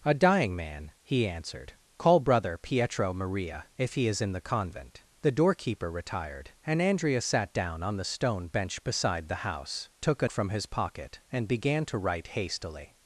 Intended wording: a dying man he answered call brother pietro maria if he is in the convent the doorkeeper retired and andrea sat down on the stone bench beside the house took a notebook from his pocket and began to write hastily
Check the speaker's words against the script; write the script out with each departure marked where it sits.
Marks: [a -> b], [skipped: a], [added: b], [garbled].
a dying man he answered call brother pietro maria if he is in the convent the doorkeeper retired and andrea sat down on the stone bench beside the house took a [skipped: notebook] from his pocket and began to write hastily